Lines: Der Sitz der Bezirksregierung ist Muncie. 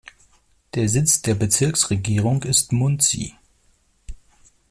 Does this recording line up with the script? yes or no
yes